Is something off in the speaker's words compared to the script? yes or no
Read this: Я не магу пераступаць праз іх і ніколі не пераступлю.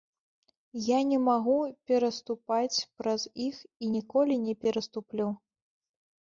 no